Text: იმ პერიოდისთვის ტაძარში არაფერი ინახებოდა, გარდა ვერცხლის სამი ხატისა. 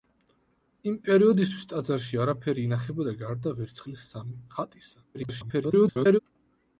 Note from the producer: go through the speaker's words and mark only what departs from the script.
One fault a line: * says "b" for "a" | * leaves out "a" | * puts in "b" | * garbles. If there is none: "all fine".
* garbles